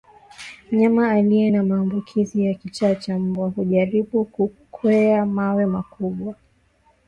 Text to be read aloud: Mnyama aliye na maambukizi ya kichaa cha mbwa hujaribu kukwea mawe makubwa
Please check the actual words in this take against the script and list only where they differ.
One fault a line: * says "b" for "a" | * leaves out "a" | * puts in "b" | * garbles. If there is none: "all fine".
all fine